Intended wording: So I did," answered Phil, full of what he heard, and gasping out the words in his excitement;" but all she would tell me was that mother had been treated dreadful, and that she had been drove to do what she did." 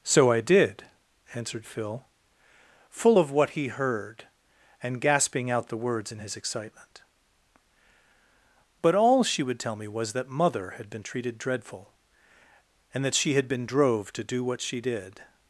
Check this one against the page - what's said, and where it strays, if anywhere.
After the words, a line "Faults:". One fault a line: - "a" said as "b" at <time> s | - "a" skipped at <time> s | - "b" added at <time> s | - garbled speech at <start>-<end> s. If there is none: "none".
So I did," answered Phil, full of what he heard, and gasping out the words in his excitement;" but all she would tell me was that mother had been treated dreadful, and that she had been drove to do what she did."
Faults:
none